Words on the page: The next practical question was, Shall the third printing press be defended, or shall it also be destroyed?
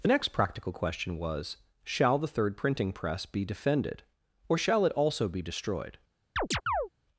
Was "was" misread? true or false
false